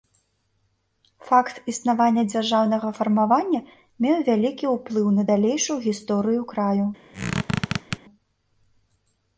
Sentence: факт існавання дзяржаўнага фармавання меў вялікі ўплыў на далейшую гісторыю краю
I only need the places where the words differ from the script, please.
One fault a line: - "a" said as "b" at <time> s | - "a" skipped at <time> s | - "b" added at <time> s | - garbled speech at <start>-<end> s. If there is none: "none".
none